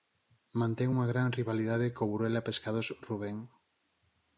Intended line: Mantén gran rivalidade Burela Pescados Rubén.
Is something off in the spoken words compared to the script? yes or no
yes